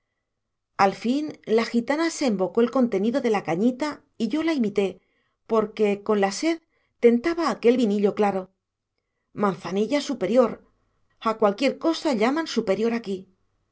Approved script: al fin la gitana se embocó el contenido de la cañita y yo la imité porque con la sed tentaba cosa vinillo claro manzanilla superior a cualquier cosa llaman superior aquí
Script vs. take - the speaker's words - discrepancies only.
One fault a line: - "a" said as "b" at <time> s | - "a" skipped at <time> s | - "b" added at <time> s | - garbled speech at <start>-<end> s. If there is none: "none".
- "cosa" said as "aquel" at 7.5 s